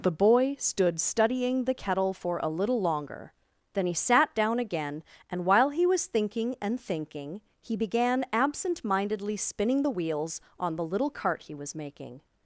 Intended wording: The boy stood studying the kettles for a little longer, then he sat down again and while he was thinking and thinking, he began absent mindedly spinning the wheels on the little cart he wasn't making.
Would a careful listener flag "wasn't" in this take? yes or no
yes